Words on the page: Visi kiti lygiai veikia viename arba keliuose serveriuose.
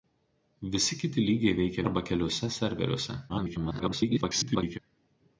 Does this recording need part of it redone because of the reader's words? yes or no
yes